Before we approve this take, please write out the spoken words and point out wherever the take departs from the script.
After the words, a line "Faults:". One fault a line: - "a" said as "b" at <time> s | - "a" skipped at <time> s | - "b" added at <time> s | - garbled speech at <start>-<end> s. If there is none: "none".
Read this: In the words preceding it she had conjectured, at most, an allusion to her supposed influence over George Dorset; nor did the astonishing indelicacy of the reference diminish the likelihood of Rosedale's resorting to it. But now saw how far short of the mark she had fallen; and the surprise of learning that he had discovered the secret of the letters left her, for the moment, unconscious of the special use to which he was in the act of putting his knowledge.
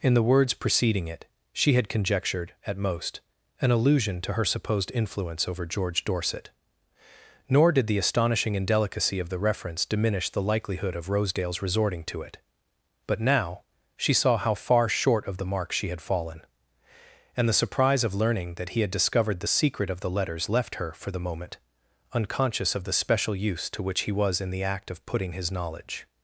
In the words preceding it she had conjectured, at most, an allusion to her supposed influence over George Dorset; nor did the astonishing indelicacy of the reference diminish the likelihood of Rosedale's resorting to it. But now she saw how far short of the mark she had fallen; and the surprise of learning that he had discovered the secret of the letters left her, for the moment, unconscious of the special use to which he was in the act of putting his knowledge.
Faults:
- "she" added at 13.9 s